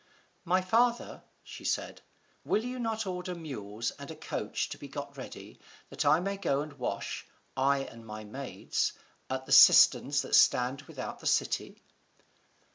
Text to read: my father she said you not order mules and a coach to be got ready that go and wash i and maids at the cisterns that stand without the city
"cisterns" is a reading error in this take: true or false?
false